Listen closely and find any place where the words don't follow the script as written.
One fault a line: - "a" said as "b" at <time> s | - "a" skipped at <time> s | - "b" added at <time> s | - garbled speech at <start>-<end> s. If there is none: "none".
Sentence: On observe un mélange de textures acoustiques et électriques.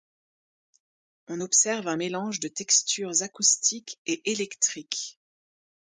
none